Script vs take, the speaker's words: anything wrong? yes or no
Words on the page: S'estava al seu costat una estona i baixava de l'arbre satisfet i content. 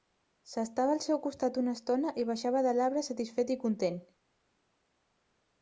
no